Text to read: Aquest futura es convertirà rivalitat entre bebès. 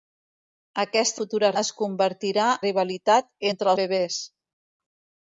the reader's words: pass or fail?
pass